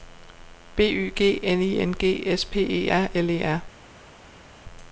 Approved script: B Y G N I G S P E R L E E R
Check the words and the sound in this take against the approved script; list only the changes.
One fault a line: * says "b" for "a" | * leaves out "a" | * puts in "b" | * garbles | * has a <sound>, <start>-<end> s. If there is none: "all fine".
* puts in "N"
* leaves out "E"